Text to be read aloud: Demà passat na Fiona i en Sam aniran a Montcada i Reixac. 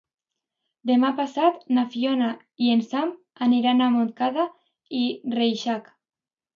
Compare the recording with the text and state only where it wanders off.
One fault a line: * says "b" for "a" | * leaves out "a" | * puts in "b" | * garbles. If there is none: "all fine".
all fine